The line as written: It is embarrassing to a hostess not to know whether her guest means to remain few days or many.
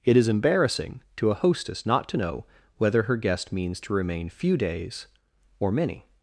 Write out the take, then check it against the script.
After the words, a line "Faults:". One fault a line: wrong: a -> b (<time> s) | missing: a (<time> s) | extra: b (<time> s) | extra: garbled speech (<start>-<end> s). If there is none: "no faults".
It is embarrassing to a hostess not to know whether her guest means to remain few days or many.
Faults:
no faults